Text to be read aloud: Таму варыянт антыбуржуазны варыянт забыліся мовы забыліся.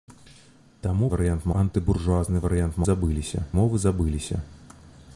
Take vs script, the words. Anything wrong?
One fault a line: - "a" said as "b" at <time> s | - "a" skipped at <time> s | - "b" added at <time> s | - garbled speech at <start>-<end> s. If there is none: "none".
none